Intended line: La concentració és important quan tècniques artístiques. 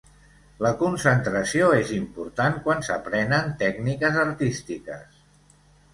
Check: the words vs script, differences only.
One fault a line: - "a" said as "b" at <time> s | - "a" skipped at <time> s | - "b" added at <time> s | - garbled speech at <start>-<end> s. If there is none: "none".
- "s'aprenen" added at 2.9 s